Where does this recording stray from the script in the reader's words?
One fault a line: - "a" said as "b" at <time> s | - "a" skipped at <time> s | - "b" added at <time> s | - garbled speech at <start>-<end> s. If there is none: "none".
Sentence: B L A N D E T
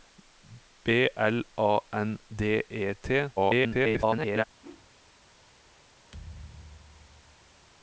- garbled speech at 3.4-4.4 s